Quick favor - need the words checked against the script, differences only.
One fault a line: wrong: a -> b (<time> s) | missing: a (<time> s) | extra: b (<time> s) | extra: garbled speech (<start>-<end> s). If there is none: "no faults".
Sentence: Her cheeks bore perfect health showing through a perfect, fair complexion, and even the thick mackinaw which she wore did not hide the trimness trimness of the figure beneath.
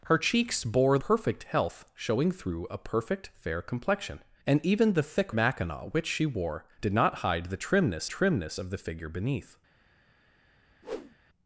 no faults